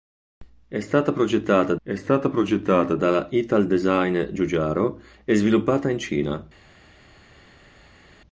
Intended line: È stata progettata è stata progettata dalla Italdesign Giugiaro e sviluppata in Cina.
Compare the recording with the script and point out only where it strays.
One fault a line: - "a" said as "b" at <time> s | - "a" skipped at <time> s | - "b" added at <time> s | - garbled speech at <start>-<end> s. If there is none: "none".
none